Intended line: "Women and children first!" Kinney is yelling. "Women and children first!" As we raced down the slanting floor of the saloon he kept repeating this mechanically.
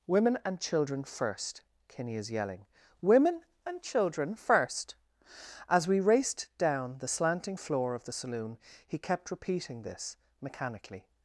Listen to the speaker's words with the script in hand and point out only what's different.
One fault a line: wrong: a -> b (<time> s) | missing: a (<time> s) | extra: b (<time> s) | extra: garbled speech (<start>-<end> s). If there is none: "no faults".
no faults